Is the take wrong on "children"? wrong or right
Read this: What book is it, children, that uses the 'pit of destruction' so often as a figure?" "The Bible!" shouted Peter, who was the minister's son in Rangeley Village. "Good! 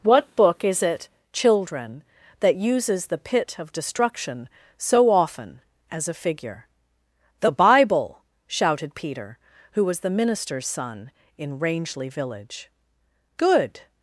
right